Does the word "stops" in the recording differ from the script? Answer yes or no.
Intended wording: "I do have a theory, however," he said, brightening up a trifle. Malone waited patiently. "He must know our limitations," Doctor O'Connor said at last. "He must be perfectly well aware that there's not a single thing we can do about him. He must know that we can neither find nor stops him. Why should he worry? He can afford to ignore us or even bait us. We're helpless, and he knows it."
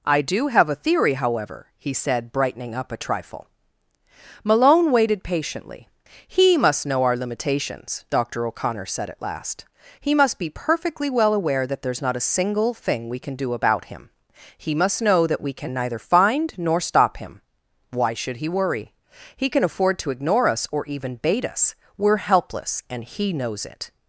yes